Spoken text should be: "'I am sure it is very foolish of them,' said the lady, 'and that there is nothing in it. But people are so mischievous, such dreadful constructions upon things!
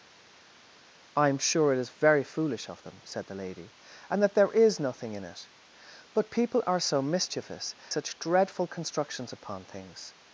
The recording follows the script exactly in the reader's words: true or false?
true